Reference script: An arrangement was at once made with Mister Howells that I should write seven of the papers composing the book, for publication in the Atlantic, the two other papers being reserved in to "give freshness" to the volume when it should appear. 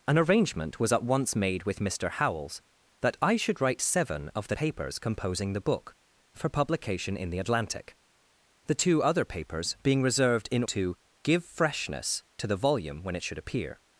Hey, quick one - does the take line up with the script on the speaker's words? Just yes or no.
yes